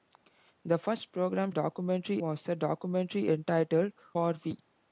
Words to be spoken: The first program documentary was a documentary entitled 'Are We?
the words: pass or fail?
pass